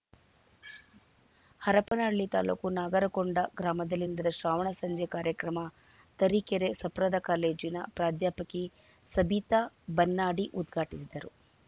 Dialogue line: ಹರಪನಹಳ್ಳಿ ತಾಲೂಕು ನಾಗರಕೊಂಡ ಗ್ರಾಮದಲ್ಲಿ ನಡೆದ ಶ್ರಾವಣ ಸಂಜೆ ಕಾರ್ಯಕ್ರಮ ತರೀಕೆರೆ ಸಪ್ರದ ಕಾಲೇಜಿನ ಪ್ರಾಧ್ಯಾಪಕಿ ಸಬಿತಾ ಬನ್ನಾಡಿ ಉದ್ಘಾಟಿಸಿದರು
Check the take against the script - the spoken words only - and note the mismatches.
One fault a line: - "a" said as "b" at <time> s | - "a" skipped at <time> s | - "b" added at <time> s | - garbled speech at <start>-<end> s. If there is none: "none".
none